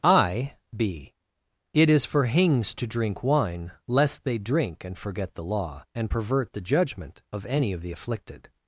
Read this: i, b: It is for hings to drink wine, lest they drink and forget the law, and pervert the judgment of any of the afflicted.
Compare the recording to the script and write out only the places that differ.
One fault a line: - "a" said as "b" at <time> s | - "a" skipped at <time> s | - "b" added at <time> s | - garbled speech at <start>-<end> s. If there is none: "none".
none